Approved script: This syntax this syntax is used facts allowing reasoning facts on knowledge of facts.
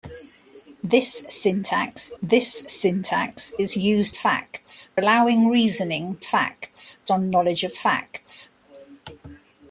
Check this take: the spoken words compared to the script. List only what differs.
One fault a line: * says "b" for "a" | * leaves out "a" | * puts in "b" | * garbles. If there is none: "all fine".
all fine